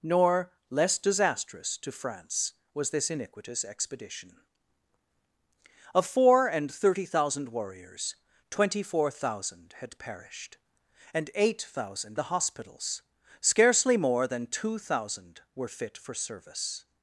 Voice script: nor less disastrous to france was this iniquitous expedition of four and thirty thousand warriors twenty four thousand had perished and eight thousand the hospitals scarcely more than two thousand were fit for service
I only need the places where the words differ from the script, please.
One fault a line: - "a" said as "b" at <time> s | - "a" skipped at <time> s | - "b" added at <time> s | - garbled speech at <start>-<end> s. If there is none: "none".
none